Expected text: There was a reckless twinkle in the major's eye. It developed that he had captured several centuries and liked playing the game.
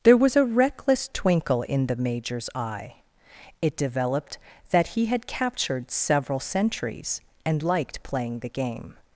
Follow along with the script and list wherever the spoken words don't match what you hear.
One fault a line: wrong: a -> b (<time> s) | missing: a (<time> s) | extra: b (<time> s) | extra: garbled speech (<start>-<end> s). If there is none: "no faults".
no faults